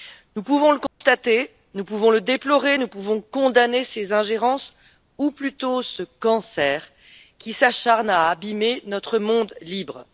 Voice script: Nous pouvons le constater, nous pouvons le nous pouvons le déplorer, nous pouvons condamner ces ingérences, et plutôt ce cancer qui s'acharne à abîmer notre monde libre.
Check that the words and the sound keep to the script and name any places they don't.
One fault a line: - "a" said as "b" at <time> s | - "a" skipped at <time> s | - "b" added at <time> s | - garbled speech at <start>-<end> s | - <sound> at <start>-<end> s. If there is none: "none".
- dropout at 0.9-1.0 s
- "nous pouvons le" skipped at 2.2 s
- "et" said as "ou" at 5.2 s